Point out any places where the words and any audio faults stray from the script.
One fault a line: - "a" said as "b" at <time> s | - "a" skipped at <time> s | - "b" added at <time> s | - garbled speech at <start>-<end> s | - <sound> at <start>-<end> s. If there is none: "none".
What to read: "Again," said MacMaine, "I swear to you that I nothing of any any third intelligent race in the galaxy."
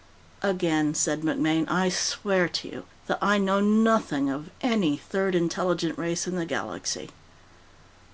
- "know" added at 3.4 s
- "any" skipped at 5.0 s